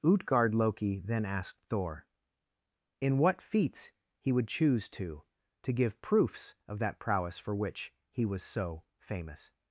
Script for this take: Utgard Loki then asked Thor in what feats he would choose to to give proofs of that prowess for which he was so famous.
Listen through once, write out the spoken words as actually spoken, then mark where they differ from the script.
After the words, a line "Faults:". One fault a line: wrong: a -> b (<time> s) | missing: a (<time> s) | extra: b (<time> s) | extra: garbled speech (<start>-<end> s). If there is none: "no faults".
Utgard Loki then asked Thor in what feats he would choose to to give proofs of that prowess for which he was so famous.
Faults:
no faults